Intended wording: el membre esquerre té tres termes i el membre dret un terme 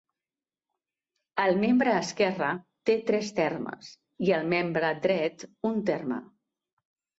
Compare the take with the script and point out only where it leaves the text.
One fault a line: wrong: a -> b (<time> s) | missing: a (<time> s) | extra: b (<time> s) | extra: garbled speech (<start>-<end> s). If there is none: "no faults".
no faults